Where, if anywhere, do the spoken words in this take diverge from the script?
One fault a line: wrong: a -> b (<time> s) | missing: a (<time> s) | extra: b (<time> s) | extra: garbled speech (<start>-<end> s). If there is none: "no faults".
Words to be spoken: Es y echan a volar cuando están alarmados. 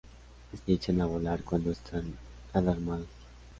no faults